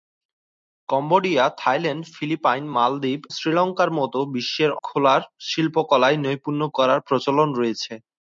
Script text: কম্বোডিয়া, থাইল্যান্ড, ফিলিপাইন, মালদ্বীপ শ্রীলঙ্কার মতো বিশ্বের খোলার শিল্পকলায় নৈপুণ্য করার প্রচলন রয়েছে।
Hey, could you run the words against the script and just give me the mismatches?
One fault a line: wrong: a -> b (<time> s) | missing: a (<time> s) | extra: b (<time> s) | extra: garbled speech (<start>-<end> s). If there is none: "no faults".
no faults